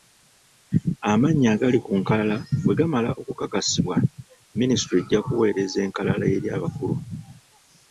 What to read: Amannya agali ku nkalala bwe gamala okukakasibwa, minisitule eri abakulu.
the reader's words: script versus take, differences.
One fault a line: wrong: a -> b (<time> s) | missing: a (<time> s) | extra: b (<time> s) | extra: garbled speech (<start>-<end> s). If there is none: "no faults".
extra: ejja kuweereza enkalala (5.0 s)